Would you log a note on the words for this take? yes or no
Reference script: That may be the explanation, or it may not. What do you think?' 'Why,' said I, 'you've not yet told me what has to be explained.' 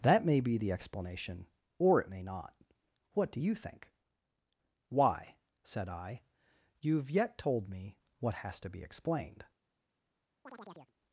yes